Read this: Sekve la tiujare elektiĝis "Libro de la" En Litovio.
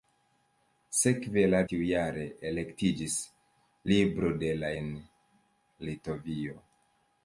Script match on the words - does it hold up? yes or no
yes